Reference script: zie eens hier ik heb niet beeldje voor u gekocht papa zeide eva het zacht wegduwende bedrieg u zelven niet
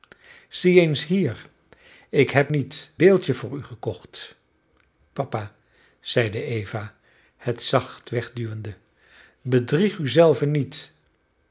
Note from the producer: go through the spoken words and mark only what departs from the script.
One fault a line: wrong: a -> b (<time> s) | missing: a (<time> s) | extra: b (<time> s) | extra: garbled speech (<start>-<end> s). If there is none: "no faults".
no faults